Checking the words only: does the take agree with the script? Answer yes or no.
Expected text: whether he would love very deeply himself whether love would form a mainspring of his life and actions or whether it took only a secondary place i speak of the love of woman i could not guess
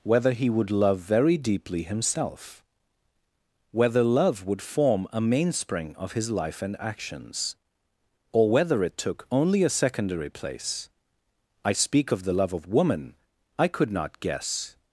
yes